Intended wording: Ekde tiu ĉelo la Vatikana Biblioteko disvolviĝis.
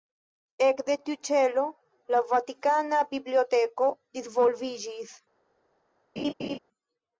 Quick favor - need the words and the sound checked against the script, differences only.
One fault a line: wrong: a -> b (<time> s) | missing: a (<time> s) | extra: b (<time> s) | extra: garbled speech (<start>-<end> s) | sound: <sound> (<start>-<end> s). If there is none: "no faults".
sound: laugh (6.2-6.6 s)